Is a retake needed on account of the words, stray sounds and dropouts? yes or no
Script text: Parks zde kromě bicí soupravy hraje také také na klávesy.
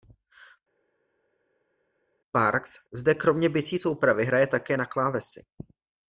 yes